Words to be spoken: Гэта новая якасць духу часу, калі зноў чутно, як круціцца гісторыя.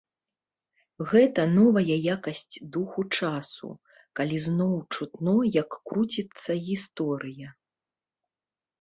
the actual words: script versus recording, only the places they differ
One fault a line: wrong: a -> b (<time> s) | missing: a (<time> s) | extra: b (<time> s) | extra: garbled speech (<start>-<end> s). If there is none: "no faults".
no faults